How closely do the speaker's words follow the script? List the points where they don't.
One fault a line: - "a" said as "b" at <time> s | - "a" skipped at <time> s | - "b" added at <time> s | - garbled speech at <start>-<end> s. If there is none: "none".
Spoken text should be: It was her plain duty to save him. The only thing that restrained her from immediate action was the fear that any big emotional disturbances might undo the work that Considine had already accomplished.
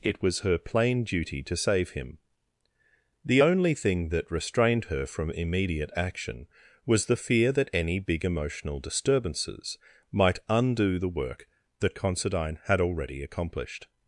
none